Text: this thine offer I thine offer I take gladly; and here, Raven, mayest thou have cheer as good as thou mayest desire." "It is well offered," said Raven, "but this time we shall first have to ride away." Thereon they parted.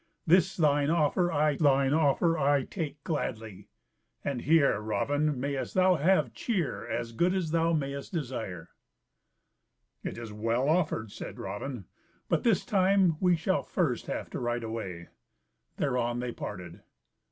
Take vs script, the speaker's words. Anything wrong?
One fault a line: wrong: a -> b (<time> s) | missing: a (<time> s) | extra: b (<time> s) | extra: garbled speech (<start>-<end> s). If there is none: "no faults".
no faults